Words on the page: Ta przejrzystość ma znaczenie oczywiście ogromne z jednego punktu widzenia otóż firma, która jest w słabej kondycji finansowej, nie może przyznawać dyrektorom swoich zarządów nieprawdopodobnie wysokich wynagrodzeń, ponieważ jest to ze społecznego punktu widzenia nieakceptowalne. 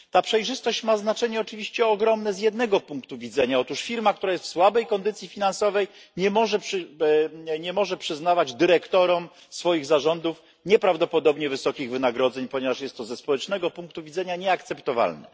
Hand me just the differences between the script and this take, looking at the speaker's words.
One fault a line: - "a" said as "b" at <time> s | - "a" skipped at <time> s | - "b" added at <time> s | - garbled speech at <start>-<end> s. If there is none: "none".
none